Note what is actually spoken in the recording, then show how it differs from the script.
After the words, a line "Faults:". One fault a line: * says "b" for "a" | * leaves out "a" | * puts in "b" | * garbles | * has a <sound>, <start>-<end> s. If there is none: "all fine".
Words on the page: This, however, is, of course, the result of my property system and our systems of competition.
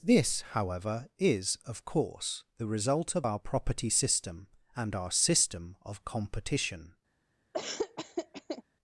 This, however, is, of course, the result of our property system and our system of competition.
Faults:
* says "our" for "my"
* says "system" for "systems"
* has a laugh, 7.5-8.6 s